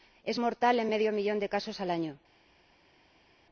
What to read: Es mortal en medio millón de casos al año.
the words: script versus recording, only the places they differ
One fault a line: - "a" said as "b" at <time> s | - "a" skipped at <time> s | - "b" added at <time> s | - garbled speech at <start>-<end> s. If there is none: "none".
none